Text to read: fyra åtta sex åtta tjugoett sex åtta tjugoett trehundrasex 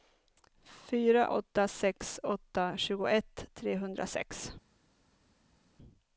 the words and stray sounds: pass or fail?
fail